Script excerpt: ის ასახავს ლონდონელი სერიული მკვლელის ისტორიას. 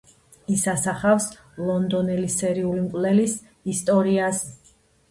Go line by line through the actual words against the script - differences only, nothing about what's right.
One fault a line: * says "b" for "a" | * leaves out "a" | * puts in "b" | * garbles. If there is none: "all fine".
all fine